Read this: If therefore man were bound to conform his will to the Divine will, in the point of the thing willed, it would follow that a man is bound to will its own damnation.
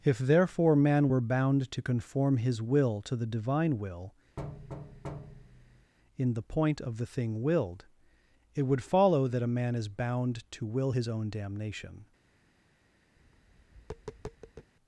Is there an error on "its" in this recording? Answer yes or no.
yes